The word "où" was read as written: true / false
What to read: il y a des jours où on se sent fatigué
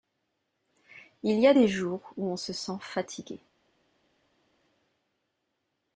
true